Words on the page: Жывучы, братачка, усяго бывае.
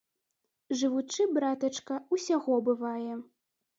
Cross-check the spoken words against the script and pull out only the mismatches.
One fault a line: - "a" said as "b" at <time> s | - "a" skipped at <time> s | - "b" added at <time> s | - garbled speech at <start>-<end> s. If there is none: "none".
none